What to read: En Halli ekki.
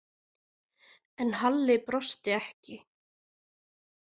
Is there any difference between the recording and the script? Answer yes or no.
yes